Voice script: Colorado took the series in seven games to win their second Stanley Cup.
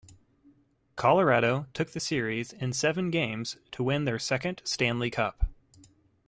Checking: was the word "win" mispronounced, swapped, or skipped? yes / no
no